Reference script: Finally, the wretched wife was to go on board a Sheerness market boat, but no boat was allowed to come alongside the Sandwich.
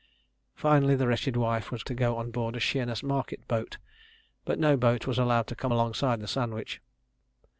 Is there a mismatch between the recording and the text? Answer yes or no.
no